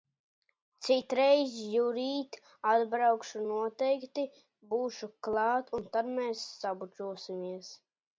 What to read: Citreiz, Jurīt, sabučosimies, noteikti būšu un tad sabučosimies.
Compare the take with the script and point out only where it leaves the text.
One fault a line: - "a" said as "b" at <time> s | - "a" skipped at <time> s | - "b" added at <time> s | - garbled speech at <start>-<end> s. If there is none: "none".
- "sabučosimies" said as "atbraukšu" at 2.7 s
- "klāt" added at 5.3 s
- "mēs" added at 6.2 s